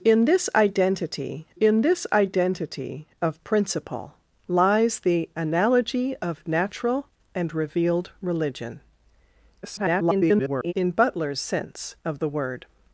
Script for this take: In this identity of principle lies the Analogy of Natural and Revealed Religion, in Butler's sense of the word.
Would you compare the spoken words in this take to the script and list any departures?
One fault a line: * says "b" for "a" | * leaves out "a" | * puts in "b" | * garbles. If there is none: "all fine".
* puts in "in this identity"
* garbles